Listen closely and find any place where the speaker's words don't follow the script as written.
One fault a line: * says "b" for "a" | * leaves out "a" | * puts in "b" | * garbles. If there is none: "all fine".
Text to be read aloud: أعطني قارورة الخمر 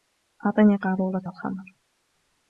all fine